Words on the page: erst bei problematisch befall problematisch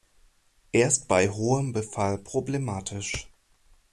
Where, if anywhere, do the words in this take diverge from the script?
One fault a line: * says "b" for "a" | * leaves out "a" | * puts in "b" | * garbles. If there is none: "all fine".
* says "hohem" for "problematisch"